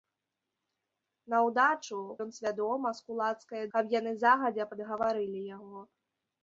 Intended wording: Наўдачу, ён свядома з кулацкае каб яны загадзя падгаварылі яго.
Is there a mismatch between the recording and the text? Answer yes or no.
no